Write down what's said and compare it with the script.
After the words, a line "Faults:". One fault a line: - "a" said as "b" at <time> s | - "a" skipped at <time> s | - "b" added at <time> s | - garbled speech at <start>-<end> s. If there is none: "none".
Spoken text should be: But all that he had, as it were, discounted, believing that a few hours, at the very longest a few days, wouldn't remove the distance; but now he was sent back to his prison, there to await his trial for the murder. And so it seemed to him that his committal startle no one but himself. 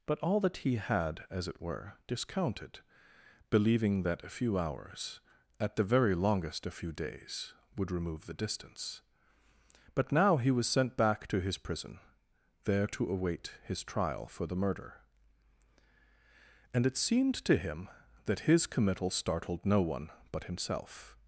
But all that he had, as it were, discounted, believing that a few hours, at the very longest a few days, would remove the distance; but now he was sent back to his prison, there to await his trial for the murder. And it seemed to him that his committal startled no one but himself.
Faults:
- "wouldn't" said as "would" at 7.8 s
- "so" skipped at 16.9 s
- "startle" said as "startled" at 19.1 s